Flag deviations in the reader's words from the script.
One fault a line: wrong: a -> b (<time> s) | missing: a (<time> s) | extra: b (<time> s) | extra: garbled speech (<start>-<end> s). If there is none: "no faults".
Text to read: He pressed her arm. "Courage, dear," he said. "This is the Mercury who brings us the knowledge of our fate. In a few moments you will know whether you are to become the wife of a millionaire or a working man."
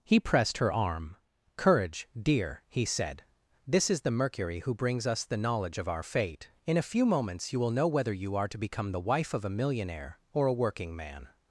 no faults